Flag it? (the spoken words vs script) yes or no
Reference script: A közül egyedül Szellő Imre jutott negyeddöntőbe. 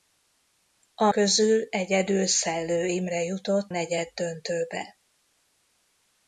no